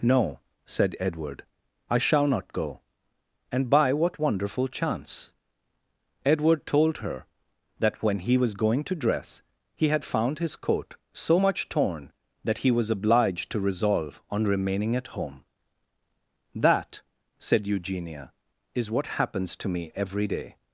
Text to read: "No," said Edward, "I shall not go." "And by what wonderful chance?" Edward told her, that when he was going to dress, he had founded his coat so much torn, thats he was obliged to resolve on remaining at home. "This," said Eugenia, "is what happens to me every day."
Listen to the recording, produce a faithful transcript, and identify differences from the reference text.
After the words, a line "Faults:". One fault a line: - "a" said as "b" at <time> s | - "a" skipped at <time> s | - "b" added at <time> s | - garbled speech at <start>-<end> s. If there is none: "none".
"No," said Edward, "I shall not go." "And by what wonderful chance?" Edward told her, that when he was going to dress, he had found his coat so much torn, that he was obliged to resolve on remaining at home. "That," said Eugenia, "is what happens to me every day."
Faults:
- "founded" said as "found" at 10.1 s
- "thats" said as "that" at 12.4 s
- "This" said as "That" at 16.5 s